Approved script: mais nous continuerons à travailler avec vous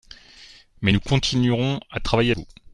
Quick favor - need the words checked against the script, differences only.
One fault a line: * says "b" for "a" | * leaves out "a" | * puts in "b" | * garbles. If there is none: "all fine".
* leaves out "avec"